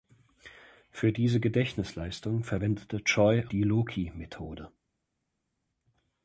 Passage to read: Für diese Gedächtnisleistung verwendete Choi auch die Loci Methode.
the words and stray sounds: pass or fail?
fail